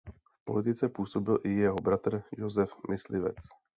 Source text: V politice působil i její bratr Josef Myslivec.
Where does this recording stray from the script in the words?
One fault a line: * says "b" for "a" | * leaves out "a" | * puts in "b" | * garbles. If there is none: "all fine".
* says "jeho" for "její"